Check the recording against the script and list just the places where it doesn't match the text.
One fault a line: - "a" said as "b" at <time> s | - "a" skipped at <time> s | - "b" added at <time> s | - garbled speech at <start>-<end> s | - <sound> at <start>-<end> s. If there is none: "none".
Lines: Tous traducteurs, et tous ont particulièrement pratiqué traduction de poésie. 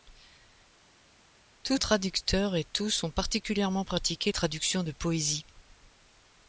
none